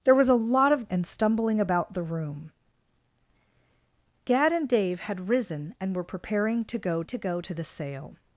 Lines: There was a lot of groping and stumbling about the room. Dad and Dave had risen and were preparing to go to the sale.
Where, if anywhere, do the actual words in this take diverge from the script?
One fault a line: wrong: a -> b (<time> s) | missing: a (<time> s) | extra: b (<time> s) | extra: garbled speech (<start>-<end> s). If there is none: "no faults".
missing: groping (0.9 s)
extra: go to (7.2 s)